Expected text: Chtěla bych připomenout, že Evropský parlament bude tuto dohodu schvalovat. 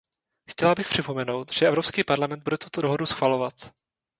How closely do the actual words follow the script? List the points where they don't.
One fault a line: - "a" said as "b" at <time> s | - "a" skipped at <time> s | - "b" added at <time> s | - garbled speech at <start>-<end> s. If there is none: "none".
none